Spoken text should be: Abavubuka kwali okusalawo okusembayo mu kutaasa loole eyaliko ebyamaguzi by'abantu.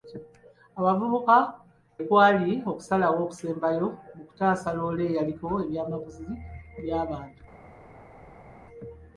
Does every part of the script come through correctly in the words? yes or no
yes